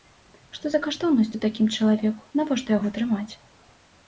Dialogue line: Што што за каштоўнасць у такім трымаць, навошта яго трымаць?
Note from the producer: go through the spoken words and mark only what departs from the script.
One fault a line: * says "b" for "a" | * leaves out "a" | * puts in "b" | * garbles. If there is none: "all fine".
* leaves out "што"
* says "чалавеку" for "трымаць"